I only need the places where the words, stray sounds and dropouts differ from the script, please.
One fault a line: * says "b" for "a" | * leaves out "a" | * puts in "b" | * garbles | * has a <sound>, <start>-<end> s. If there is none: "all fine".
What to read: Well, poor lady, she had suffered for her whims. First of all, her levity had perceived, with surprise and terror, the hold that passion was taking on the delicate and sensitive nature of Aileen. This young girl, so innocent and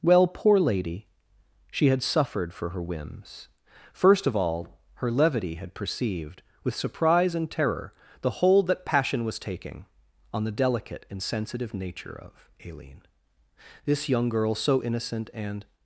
all fine